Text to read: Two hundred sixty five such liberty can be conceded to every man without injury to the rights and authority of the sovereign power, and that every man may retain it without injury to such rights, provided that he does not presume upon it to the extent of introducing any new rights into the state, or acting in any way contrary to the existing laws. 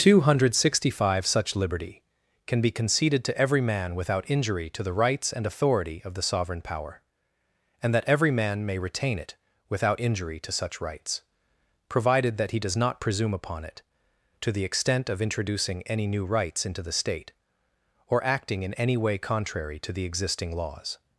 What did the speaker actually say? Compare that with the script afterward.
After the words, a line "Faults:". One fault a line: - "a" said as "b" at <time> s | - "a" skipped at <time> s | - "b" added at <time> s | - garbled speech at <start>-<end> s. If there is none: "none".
Two hundred sixty five such liberty can be conceded to every man without injury to the rights and authority of the sovereign power, and that every man may retain it without injury to such rights, provided that he does not presume upon it to the extent of introducing any new rights into the state, or acting in any way contrary to the existing laws.
Faults:
none